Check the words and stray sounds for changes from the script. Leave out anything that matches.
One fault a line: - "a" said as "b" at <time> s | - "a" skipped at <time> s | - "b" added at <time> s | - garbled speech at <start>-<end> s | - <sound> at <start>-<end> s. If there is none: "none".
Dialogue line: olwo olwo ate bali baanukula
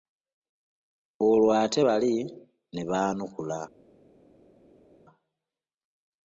- "olwo" skipped at 1.5 s
- "ne" added at 2.7 s